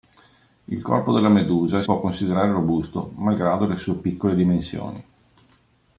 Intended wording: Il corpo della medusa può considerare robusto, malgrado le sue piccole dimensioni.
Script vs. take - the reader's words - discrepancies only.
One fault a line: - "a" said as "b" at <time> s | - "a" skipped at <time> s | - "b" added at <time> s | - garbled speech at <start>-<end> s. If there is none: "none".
none